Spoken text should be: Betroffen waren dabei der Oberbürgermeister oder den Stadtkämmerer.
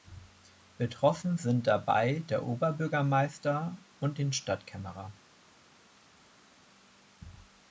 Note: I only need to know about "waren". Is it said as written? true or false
false